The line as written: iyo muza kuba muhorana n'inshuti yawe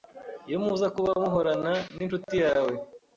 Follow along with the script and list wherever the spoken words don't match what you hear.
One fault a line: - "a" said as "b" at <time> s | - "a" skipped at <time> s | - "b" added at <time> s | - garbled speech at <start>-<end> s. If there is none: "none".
none